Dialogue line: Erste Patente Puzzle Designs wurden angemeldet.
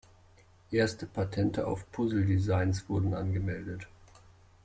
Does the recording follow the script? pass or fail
fail